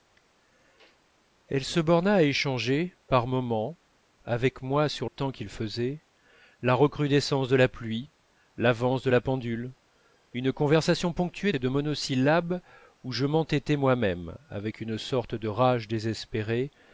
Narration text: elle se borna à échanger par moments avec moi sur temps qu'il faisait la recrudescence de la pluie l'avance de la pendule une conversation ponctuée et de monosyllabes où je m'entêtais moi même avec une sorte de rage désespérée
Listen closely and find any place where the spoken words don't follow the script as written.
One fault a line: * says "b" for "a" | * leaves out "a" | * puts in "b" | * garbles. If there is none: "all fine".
all fine